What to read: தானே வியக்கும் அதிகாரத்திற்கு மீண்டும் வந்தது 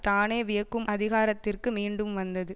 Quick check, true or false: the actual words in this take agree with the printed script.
true